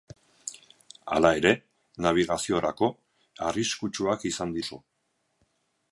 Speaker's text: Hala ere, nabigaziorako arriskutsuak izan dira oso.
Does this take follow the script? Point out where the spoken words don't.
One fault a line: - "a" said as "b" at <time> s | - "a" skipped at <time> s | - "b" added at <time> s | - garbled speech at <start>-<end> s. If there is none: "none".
- "dira" skipped at 4.6 s